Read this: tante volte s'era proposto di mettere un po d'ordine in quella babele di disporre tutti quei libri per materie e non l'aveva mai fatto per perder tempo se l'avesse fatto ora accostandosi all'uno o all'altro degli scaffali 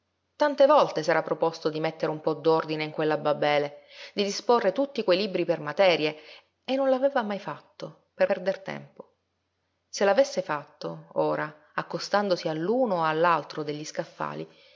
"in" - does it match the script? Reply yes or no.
yes